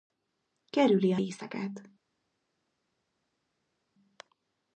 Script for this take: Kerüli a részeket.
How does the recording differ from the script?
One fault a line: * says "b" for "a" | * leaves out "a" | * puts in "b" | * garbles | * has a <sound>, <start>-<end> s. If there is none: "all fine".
all fine